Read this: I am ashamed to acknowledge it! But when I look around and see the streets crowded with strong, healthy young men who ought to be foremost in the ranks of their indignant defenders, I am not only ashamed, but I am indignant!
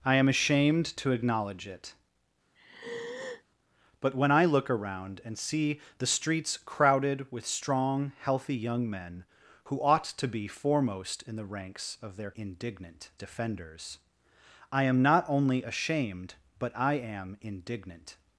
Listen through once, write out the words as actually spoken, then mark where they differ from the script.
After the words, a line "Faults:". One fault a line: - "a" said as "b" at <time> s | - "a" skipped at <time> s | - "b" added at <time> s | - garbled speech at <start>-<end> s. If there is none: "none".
I am ashamed to acknowledge it! But when I look around and see the streets crowded with strong, healthy young men who ought to be foremost in the ranks of their indignant defenders, I am not only ashamed, but I am indignant!
Faults:
none